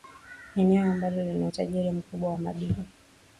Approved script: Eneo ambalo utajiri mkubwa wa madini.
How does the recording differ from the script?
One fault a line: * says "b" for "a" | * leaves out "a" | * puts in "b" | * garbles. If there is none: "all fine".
* puts in "lina"